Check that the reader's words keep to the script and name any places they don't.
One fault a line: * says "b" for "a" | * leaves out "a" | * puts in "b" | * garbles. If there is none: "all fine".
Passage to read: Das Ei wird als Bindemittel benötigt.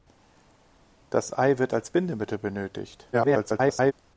* garbles